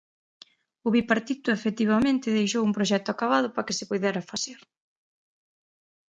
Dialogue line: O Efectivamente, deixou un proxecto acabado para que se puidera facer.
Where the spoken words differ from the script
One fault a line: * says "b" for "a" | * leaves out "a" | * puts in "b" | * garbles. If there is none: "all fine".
* puts in "Bipartito"